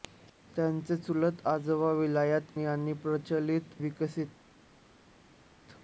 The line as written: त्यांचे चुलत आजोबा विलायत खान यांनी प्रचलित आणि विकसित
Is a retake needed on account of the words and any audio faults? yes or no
yes